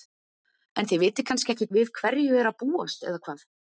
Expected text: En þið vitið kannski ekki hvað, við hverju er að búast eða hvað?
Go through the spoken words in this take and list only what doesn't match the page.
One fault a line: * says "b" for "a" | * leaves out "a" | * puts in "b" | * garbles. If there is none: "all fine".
* leaves out "hvað"